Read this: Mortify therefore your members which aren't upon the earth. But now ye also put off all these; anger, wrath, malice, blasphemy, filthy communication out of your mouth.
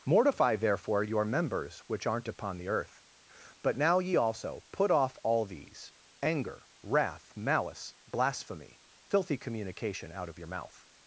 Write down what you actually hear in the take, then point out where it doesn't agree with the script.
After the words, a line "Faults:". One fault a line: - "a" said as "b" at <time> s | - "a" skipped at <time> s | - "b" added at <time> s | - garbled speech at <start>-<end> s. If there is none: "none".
Mortify therefore your members which aren't upon the earth. But now ye also put off all these; anger, wrath, malice, blasphemy, filthy communication out of your mouth.
Faults:
none